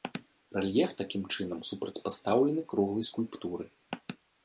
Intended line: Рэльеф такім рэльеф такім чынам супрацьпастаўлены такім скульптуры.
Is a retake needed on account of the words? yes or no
yes